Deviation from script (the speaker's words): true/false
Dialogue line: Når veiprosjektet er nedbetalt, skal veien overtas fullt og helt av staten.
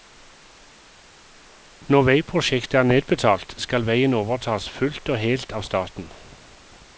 false